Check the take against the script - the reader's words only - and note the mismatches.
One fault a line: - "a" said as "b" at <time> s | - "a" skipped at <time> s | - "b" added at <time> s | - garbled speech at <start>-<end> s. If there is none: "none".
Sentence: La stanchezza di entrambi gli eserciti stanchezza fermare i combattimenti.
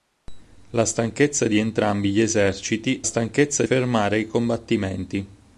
none